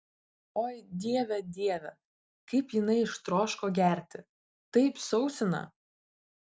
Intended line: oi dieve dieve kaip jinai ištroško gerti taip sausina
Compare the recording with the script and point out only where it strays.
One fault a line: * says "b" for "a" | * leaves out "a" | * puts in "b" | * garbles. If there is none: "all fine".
all fine